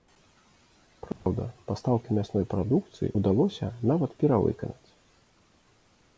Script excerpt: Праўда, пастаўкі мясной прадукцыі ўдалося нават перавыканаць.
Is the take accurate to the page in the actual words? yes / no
yes